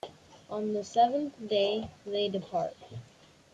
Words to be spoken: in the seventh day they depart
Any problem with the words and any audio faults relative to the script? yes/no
yes